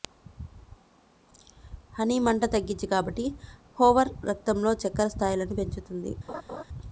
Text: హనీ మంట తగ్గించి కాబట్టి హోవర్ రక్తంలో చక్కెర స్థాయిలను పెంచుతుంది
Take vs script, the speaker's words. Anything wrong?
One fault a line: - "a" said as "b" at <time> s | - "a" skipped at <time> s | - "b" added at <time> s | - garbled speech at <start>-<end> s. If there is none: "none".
none